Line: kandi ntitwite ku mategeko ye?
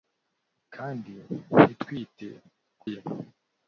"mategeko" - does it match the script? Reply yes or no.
no